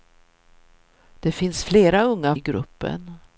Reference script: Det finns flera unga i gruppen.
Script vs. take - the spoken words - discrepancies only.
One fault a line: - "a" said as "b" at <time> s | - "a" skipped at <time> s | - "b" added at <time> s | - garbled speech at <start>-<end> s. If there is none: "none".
none